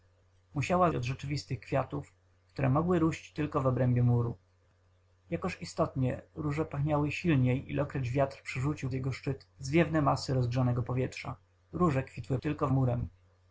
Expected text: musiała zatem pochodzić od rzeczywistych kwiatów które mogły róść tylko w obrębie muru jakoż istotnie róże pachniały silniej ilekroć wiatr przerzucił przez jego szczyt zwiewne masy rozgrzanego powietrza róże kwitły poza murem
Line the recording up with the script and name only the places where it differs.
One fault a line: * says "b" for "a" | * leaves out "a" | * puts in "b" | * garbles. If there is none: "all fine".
* leaves out "zatem pochodzić"
* leaves out "przez"
* says "tylko" for "poza"